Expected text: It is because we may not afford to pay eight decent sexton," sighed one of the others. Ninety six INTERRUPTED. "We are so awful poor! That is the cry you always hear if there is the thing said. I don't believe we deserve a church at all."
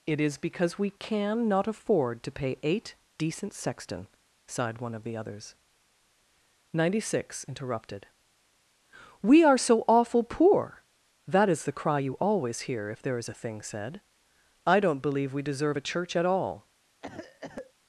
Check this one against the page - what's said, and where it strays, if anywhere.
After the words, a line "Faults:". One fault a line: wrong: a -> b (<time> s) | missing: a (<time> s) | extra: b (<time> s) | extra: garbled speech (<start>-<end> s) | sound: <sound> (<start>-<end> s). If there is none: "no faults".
It is because we can not afford to pay eight decent sexton," sighed one of the others. Ninety six INTERRUPTED. "We are so awful poor! That is the cry you always hear if there is a thing said. I don't believe we deserve a church at all."
Faults:
wrong: may -> can (0.9 s)
wrong: the -> a (13.3 s)
sound: cough (17.0-17.7 s)